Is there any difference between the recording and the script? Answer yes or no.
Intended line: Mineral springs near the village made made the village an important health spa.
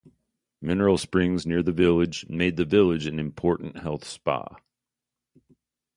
yes